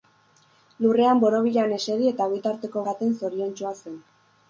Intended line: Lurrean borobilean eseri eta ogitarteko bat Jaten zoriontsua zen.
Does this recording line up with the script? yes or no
no